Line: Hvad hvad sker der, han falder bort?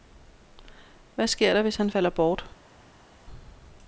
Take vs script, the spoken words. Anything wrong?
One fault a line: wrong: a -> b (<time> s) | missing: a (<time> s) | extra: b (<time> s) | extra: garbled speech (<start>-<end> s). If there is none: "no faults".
missing: hvad (1.3 s)
extra: hvis (1.6 s)